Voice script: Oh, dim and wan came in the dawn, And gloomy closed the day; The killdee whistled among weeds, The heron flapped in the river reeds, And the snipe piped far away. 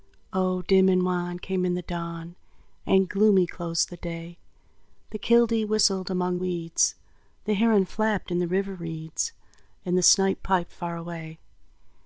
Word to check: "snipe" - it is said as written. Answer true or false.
true